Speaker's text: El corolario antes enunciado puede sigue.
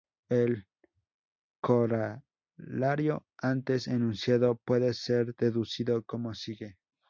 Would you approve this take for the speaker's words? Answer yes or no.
no